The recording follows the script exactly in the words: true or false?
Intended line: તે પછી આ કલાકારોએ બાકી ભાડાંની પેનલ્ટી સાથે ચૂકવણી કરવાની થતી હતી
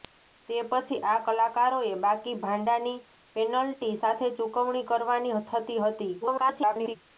false